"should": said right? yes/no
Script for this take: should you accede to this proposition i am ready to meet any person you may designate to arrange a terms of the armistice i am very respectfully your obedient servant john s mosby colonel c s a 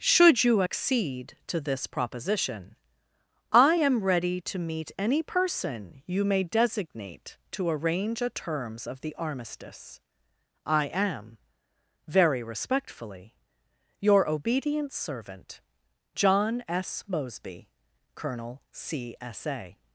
yes